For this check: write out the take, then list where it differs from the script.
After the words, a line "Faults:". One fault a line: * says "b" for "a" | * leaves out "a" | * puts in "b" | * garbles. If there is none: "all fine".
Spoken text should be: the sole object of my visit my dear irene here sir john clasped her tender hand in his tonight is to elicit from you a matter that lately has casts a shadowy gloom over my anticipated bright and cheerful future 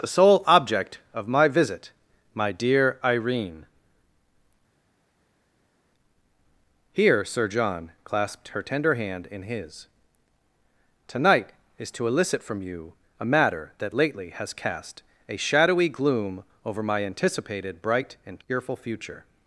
the sole object of my visit my dear irene here sir john clasped her tender hand in his tonight is to elicit from you a matter that lately has cast a shadowy gloom over my anticipated bright and cheerful future
Faults:
* says "cast" for "casts"